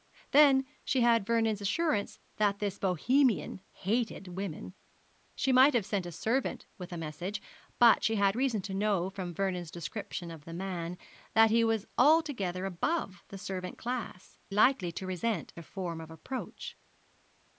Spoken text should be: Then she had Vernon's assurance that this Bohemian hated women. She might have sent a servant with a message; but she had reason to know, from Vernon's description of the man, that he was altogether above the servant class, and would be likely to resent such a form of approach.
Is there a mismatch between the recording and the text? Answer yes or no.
yes